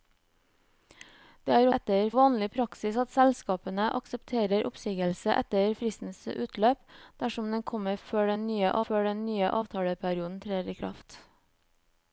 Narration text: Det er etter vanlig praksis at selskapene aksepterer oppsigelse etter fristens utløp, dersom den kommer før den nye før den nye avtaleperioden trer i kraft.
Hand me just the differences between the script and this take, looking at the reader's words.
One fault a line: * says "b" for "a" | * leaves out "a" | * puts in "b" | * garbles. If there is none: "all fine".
all fine